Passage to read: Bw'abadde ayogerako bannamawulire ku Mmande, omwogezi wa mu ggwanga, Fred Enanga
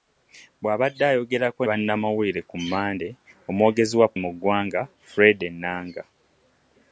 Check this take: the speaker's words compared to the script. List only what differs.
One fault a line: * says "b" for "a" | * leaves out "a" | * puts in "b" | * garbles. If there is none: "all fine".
all fine